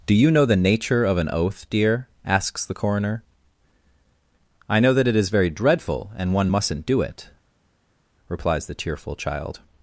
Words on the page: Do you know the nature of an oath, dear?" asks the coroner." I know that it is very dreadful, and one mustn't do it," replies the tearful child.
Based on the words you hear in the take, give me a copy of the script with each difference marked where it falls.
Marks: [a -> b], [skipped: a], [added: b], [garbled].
Do you know the nature of an oath, dear?" asks the coroner." I know that it is very dreadful, and one mustn't do it," replies the tearful child.